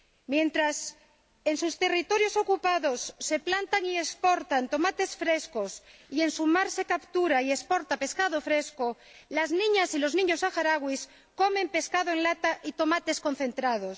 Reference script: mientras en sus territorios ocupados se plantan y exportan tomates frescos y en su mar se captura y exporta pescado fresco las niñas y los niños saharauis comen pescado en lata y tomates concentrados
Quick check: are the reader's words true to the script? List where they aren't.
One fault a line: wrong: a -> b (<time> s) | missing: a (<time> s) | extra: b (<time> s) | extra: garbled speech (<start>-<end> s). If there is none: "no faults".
no faults